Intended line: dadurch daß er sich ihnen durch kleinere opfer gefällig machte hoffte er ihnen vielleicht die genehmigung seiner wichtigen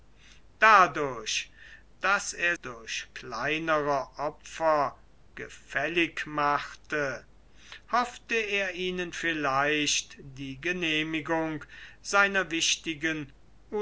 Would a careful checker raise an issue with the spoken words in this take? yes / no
yes